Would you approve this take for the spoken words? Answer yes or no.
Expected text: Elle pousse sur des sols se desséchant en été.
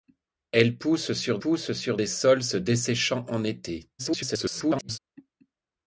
no